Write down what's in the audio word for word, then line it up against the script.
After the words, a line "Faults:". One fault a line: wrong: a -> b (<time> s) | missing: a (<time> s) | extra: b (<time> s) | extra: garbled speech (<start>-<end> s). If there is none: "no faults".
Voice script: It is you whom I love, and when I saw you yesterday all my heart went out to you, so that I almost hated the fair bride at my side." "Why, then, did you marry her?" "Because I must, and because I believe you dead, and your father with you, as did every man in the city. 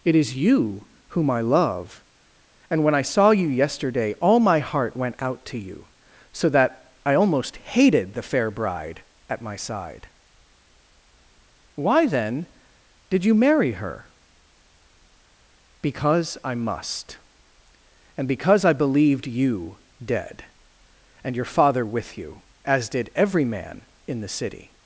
It is you whom I love, and when I saw you yesterday all my heart went out to you, so that I almost hated the fair bride at my side." "Why, then, did you marry her?" "Because I must, and because I believed you dead, and your father with you, as did every man in the city.
Faults:
wrong: believe -> believed (18.7 s)